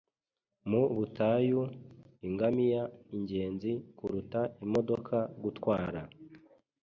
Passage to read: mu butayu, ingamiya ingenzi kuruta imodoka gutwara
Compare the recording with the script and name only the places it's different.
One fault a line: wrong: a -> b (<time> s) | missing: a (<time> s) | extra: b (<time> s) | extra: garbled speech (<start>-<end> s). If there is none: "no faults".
no faults